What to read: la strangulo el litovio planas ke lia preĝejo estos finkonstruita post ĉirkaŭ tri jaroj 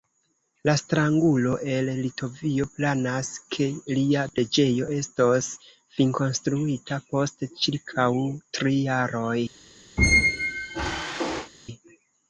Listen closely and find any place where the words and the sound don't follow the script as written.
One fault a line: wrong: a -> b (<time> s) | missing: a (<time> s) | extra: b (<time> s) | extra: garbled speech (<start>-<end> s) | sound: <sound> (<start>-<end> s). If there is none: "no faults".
sound: squeak (10.0-11.5 s)